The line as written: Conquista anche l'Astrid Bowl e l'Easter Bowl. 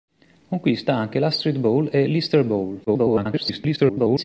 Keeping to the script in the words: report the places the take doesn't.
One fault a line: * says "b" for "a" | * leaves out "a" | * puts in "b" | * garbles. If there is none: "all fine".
* garbles